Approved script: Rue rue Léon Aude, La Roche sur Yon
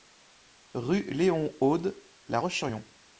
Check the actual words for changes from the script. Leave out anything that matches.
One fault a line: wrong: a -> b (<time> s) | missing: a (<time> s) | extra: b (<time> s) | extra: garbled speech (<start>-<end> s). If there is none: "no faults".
missing: rue (1.0 s)